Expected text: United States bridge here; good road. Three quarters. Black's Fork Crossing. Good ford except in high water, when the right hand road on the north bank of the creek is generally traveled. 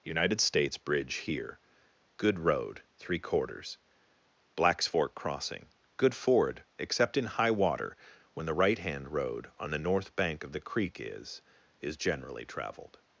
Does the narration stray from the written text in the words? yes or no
yes